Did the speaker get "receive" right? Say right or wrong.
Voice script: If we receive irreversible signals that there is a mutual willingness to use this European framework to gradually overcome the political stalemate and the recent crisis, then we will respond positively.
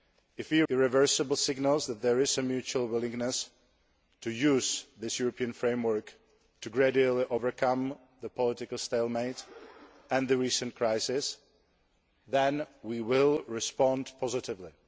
wrong